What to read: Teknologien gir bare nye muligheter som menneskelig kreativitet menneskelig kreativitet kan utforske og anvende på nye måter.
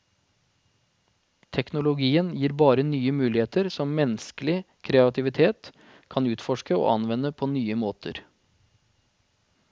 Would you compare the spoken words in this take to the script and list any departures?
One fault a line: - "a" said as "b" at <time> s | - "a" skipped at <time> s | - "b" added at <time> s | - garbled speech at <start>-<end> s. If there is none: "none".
- "menneskelig kreativitet" skipped at 5.7 s